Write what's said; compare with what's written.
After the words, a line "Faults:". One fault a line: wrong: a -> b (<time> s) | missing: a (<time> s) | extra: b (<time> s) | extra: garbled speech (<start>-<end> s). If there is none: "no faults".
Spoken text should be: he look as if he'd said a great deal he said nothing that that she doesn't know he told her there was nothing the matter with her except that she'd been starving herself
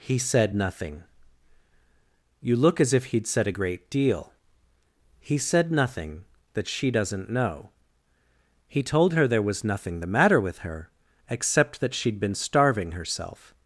he said nothing you look as if he'd said a great deal he said nothing that she doesn't know he told her there was nothing the matter with her except that she'd been starving herself
Faults:
extra: said nothing you (0.2 s)
missing: that (6.7 s)